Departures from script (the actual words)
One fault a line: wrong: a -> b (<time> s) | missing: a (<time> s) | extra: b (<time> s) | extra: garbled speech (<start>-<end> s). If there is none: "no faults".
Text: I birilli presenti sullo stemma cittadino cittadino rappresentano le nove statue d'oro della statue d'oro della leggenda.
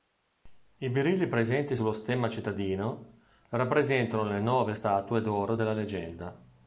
missing: cittadino (3.0 s)
missing: statue d'oro della (5.7 s)